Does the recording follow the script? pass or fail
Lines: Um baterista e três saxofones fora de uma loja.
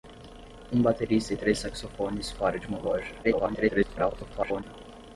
fail